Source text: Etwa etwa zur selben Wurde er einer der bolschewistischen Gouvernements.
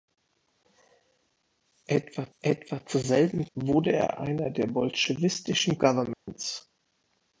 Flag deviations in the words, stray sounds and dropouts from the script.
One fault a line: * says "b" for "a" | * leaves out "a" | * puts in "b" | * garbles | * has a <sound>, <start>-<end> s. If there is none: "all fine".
* has a dropout, 6.1-6.3 s